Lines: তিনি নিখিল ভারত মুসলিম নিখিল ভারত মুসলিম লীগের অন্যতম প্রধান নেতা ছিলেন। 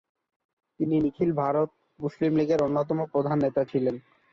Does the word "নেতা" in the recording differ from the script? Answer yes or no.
no